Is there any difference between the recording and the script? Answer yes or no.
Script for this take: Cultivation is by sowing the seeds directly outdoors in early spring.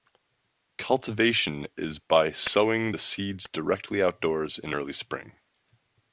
no